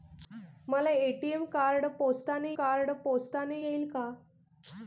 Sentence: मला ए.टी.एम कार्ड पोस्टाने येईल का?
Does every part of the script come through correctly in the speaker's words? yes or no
no